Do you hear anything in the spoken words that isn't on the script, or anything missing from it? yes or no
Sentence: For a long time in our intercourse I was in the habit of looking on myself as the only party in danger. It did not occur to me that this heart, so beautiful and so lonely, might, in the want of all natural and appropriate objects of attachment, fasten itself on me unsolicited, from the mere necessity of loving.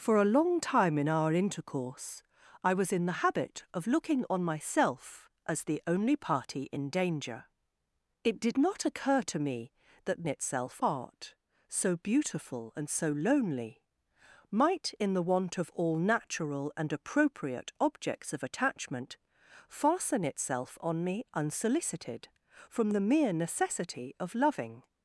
yes